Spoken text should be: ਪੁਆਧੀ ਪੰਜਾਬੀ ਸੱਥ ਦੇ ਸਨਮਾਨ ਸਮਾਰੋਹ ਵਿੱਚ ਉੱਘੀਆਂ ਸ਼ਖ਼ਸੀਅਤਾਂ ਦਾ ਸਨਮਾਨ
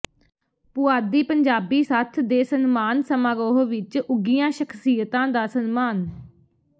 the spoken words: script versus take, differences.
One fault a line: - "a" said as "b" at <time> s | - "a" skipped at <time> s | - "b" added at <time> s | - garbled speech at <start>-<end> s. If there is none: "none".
none